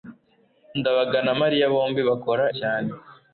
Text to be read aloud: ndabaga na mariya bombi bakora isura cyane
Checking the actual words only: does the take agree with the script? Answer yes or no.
no